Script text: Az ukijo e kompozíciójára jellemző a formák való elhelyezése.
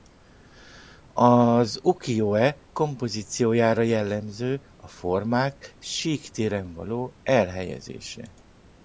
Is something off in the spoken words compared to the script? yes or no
yes